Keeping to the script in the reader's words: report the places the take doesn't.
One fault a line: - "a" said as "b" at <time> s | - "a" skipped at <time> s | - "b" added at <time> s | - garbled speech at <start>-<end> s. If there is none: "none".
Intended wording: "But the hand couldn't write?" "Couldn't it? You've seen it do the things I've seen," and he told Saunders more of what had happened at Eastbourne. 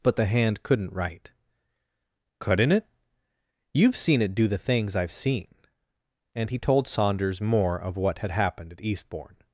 none